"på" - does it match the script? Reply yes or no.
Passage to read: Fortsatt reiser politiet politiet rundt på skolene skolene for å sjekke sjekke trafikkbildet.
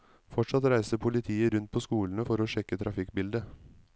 yes